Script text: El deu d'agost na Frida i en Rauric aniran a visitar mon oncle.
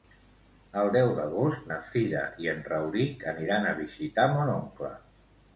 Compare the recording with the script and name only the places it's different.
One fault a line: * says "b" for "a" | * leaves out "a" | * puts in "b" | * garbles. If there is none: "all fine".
all fine